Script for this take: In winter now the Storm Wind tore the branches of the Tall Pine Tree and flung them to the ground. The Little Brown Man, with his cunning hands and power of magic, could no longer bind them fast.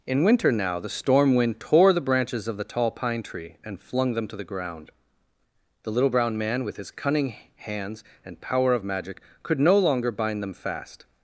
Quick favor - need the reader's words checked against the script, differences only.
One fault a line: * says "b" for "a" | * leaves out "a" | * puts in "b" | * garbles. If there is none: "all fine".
all fine